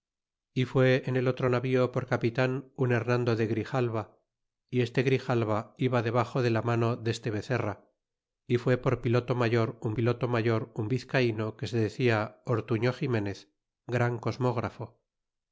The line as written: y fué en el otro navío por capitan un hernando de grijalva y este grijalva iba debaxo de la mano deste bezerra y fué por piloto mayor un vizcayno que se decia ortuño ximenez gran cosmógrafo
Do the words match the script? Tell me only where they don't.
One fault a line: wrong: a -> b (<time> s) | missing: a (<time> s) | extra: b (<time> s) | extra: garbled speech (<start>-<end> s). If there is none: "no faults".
extra: piloto mayor un (9.9 s)